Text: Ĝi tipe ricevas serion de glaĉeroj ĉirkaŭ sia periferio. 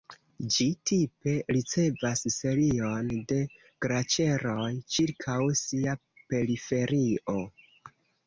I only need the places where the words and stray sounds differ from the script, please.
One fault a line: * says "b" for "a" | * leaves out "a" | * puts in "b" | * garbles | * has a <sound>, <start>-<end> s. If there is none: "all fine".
all fine